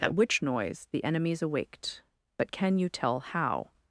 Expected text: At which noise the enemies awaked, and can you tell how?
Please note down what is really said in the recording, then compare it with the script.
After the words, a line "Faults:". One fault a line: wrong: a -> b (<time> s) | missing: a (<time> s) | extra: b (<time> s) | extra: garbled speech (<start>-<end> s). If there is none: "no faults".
At which noise the enemies awaked, but can you tell how?
Faults:
wrong: and -> but (2.4 s)